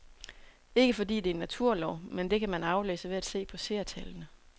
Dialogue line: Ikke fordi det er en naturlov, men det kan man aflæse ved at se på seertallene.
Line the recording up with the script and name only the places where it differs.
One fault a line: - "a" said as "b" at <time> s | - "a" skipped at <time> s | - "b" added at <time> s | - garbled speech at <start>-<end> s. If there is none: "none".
none